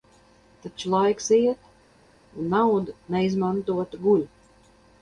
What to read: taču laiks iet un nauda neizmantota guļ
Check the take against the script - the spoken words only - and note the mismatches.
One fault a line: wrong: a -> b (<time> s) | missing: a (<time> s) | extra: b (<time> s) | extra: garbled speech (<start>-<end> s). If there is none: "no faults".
no faults